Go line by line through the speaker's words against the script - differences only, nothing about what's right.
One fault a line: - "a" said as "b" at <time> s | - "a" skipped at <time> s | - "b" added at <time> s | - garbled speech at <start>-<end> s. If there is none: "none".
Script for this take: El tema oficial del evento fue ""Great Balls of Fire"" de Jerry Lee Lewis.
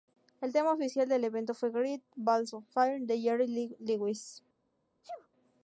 none